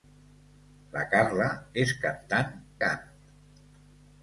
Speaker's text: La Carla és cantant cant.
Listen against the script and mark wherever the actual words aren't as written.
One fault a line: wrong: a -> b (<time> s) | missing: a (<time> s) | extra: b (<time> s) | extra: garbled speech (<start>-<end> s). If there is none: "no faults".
no faults